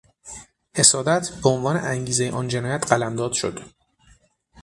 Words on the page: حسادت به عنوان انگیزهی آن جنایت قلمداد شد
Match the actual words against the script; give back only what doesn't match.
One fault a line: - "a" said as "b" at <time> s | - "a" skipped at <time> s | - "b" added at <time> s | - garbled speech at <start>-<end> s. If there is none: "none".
none